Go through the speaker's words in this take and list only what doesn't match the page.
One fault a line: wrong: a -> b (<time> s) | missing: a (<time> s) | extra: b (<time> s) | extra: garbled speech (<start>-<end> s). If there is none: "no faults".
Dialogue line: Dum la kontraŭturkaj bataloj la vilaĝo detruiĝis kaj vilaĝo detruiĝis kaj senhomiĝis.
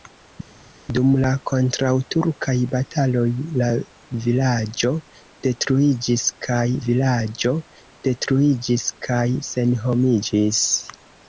no faults